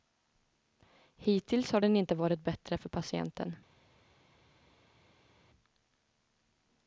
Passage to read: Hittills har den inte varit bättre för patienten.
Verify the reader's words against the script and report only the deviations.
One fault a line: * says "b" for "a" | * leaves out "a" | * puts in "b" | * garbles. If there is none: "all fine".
all fine